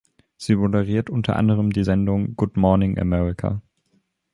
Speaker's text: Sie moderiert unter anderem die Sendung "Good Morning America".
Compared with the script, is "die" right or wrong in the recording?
right